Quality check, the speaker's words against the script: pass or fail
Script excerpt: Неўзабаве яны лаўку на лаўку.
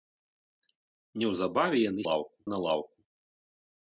pass